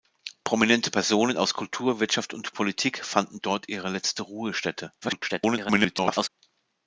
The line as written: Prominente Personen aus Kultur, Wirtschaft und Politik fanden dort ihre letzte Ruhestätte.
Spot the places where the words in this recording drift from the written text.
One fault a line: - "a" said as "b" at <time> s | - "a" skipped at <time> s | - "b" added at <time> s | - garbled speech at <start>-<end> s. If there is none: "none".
- garbled speech at 5.0-6.3 s